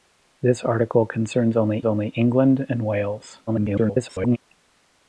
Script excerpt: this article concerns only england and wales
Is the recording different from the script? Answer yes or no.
yes